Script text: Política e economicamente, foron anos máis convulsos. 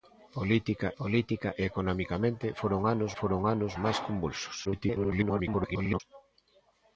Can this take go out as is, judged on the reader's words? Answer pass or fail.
fail